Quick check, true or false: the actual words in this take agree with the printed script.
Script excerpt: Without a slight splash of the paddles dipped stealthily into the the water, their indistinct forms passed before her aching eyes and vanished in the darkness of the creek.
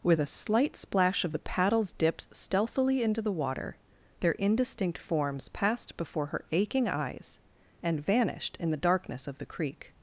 false